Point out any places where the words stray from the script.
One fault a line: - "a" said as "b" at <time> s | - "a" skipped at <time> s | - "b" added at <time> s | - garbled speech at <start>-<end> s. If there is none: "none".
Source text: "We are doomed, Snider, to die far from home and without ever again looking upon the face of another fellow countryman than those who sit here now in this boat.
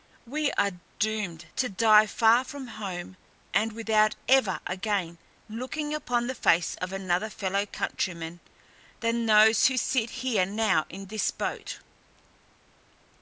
- "Snider" skipped at 1.4 s